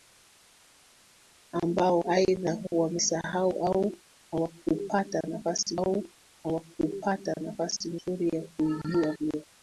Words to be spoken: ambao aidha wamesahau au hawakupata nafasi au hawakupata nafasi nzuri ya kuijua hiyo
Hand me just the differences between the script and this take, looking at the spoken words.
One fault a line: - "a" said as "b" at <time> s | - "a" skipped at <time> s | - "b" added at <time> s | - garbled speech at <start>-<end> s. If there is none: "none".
none